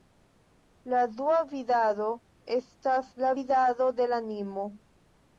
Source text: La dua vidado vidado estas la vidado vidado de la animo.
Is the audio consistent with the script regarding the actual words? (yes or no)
no